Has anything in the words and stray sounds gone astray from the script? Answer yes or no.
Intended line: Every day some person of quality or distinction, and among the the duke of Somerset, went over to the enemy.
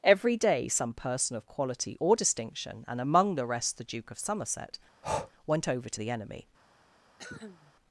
yes